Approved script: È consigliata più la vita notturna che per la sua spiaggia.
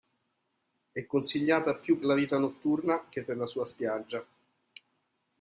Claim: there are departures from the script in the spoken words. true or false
false